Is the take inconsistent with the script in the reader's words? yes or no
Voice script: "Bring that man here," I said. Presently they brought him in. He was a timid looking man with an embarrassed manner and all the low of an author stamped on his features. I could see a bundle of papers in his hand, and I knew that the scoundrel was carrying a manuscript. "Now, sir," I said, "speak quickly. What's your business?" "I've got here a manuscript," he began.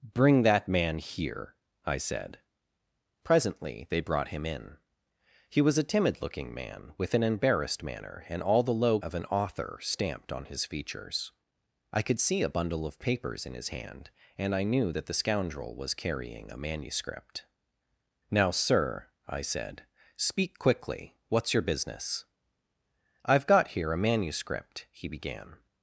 no